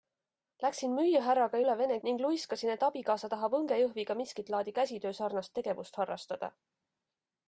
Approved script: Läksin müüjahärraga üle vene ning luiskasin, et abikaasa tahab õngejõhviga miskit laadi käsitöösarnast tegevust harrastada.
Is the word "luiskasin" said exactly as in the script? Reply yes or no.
yes